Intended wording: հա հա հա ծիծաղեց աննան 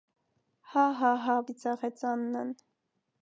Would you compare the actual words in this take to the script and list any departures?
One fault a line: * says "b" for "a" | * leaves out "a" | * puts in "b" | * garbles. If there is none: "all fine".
all fine